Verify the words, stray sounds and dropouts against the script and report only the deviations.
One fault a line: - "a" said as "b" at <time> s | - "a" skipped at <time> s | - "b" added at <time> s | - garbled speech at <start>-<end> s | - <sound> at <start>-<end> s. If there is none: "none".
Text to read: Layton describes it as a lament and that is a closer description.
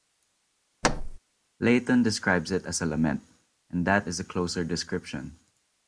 - thud at 0.8-1.2 s